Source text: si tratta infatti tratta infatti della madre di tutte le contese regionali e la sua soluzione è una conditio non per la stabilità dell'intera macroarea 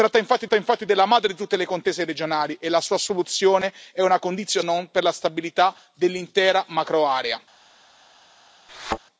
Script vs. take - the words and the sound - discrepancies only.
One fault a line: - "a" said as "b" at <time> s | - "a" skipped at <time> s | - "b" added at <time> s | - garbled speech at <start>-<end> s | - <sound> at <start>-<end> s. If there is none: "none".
- thud at 8.7-9.0 s